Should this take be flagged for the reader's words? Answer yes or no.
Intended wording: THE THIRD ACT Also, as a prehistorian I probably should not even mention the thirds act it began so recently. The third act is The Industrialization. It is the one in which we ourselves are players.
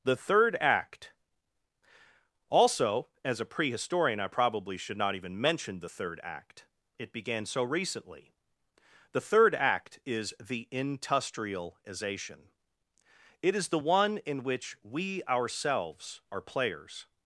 yes